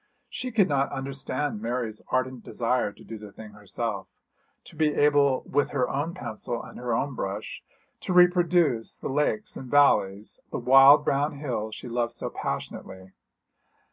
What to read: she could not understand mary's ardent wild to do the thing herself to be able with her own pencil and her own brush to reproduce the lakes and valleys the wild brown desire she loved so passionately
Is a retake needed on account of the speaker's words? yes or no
yes